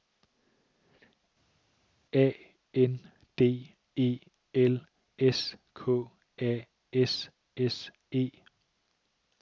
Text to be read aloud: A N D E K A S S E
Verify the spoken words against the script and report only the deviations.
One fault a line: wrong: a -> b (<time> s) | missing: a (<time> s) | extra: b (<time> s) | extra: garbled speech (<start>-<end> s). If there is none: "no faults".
extra: L S (4.5 s)